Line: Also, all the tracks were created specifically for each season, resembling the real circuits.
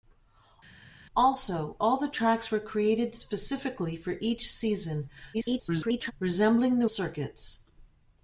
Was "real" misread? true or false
true